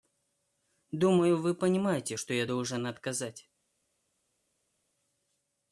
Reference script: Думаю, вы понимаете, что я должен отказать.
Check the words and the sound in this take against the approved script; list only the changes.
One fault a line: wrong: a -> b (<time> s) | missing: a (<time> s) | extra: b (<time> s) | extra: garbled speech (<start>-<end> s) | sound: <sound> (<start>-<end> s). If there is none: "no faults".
no faults